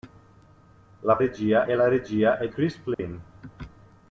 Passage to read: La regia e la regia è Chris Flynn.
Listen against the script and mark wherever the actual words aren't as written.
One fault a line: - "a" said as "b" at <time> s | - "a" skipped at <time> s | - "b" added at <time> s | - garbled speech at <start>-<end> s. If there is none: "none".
none